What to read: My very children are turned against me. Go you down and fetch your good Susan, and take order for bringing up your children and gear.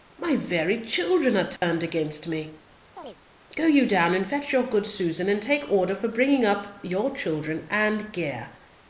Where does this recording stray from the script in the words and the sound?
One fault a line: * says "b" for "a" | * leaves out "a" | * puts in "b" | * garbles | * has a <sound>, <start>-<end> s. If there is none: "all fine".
* has a dropout, 1.6-1.6 s
* has a chirp, 3.0-3.2 s